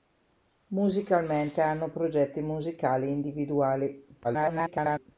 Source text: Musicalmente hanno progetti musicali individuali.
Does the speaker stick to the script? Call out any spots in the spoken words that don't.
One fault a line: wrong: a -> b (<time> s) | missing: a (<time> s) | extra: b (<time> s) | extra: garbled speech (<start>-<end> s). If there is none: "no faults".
extra: garbled speech (4.2-5.1 s)